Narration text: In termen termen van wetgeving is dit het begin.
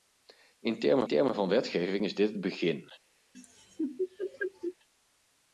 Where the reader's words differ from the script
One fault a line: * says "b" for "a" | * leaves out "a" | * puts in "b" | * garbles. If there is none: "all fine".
all fine